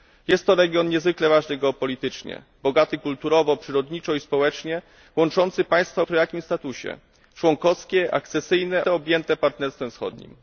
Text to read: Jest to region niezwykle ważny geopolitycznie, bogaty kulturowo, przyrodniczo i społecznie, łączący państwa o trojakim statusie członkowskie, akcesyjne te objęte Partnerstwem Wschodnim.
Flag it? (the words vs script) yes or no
no